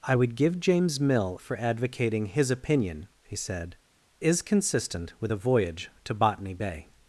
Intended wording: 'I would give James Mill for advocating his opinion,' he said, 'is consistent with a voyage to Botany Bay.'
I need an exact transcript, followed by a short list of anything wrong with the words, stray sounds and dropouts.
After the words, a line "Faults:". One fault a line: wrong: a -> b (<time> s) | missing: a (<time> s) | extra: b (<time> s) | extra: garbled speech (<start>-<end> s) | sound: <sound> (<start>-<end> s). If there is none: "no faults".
'I would give James Mill for advocating his opinion,' he said, 'is consistent with a voyage to Botany Bay.'
Faults:
no faults